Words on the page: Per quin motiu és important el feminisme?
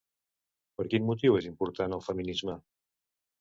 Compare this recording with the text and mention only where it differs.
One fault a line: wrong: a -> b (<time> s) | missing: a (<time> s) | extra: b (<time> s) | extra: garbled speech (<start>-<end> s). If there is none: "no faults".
no faults